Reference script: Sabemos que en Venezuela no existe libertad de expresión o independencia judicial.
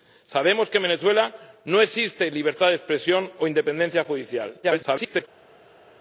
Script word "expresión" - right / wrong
right